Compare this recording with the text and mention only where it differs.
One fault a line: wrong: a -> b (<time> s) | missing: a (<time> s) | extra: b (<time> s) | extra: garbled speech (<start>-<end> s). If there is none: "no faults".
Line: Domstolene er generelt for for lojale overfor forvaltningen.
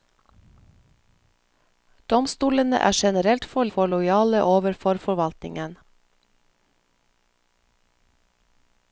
no faults